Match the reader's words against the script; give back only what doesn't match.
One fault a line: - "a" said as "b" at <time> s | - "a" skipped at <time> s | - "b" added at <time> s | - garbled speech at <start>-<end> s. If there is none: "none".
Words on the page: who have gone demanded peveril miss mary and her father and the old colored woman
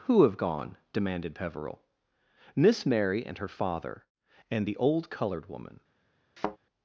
none